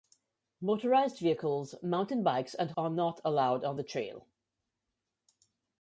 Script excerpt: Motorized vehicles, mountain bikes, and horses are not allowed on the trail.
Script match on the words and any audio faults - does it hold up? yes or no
no